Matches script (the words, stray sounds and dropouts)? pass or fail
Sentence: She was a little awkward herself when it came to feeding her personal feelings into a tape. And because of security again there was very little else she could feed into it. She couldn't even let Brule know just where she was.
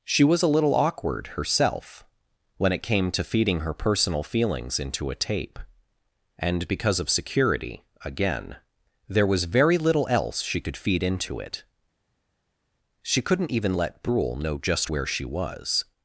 pass